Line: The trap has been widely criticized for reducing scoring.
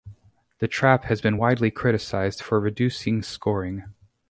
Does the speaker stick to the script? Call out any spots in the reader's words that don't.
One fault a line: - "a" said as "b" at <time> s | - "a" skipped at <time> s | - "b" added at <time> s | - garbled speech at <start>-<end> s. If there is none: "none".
none